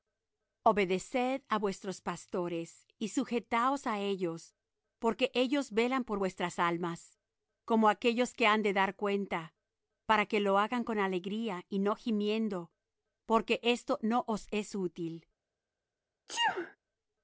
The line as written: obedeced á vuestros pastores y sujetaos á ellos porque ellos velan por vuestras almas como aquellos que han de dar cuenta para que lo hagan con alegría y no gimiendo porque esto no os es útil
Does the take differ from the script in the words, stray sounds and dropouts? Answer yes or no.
yes